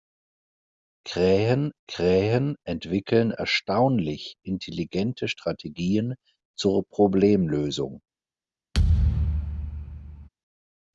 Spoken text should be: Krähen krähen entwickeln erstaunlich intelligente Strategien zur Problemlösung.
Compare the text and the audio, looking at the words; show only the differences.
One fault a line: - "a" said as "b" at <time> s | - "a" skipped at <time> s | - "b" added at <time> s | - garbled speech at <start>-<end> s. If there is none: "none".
none